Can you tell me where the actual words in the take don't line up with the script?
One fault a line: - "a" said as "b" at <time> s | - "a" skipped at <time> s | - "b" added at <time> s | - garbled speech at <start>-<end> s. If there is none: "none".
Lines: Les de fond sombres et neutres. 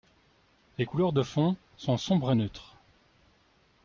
- "couleurs" added at 0.8 s
- "sont" added at 1.8 s